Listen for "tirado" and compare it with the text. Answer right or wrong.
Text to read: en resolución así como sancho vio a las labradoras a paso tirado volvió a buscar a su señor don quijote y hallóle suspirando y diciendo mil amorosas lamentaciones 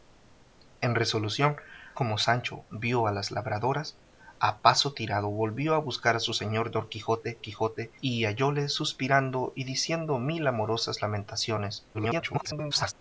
right